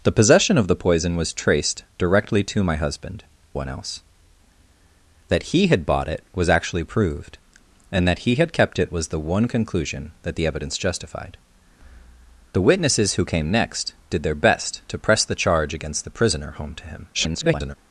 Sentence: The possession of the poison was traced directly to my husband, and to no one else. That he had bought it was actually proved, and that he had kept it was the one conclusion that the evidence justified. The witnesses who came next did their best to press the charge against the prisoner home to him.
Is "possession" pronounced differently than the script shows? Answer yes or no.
no